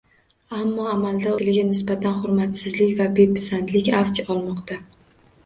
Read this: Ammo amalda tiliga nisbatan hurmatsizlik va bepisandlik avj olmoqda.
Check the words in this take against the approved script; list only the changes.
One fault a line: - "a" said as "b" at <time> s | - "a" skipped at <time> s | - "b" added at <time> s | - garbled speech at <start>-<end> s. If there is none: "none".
none